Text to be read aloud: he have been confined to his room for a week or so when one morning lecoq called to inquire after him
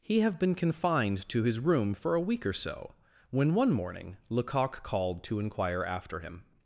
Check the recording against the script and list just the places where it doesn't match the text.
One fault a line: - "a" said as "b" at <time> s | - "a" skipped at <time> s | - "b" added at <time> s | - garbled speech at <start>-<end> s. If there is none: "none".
none